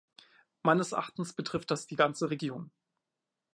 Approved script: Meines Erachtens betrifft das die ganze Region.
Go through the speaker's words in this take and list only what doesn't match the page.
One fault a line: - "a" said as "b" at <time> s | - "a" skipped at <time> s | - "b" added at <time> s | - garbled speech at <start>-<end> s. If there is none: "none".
none